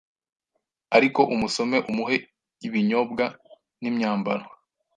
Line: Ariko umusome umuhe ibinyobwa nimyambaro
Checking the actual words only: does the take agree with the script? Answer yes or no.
yes